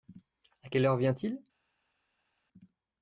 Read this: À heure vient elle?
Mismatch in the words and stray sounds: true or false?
true